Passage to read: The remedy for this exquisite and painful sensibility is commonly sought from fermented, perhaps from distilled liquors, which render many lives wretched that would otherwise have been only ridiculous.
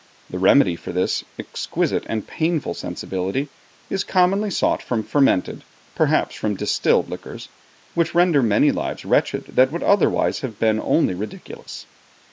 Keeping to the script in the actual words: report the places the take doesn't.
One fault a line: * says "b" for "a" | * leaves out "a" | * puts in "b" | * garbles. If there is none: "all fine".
all fine